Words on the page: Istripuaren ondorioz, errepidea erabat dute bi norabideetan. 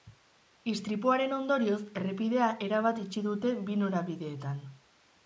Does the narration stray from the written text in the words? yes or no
yes